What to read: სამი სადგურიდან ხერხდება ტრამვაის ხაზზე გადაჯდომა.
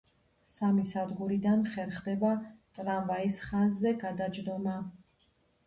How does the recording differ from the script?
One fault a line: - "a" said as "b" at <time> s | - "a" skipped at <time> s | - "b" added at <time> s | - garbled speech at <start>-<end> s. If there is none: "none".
none